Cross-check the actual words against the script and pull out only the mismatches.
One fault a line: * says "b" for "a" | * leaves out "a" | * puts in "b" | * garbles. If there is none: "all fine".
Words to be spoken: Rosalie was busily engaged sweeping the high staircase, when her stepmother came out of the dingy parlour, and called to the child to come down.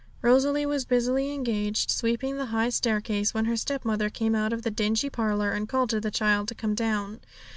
all fine